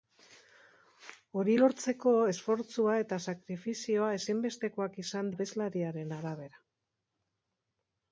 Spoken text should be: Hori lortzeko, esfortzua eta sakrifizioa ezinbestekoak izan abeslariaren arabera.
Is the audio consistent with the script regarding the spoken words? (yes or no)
yes